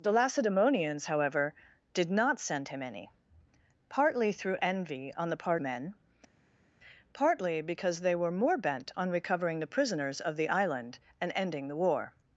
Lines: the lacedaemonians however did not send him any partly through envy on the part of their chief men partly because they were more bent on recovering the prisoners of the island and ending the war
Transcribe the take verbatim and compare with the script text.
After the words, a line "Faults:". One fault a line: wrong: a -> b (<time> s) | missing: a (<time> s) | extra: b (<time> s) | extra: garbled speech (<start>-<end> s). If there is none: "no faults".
the lacedaemonians however did not send him any partly through envy on the part men partly because they were more bent on recovering the prisoners of the island and ending the war
Faults:
missing: of their chief (5.6 s)